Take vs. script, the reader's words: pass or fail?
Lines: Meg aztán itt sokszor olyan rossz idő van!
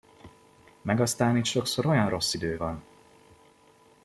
pass